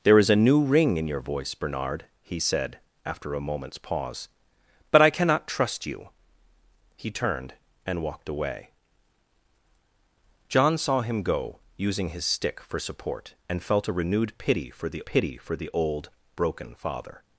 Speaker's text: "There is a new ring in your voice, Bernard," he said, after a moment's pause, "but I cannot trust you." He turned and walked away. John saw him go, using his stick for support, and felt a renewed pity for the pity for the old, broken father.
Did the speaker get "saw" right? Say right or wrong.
right